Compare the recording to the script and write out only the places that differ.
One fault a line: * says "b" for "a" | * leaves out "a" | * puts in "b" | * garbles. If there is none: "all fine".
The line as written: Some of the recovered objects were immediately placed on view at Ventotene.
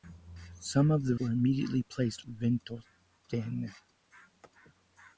* leaves out "recovered objects"
* leaves out "on view at"